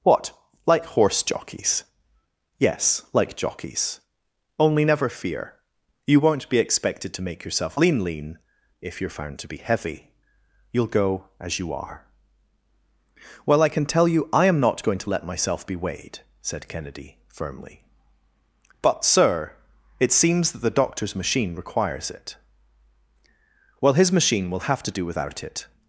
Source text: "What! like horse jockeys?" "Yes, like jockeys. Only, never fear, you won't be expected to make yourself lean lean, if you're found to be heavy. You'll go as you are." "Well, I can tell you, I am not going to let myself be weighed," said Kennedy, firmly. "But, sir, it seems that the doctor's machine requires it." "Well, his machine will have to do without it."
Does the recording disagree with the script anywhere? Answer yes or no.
no